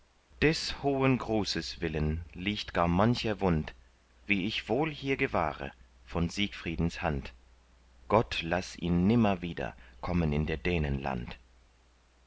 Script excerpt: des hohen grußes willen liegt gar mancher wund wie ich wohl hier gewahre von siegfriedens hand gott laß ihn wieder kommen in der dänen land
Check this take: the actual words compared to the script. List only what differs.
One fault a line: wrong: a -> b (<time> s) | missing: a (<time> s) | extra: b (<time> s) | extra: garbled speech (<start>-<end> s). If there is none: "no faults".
extra: nimmer (9.1 s)